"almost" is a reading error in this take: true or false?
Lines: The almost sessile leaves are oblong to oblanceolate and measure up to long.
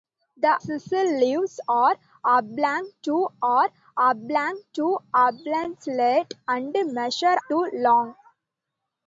true